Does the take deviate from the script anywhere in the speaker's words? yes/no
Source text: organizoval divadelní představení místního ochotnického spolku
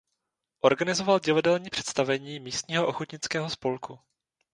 no